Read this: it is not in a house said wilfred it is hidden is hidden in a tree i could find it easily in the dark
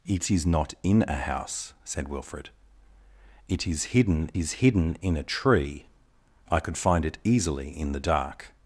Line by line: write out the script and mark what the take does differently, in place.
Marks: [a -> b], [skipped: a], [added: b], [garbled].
it is not in a house said wilfred it is hidden is hidden in a tree i could find it easily in the dark